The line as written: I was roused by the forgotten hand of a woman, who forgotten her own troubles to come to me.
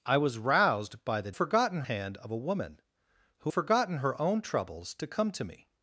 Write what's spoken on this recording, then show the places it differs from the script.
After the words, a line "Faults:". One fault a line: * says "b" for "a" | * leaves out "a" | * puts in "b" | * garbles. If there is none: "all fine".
I was roused by the forgotten hand of a woman, who forgotten her own troubles to come to me.
Faults:
all fine